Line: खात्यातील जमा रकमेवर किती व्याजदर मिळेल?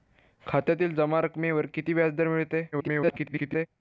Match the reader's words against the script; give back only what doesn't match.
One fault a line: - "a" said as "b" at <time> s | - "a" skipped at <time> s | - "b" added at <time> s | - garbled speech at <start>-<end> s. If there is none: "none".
- garbled speech at 2.7-3.7 s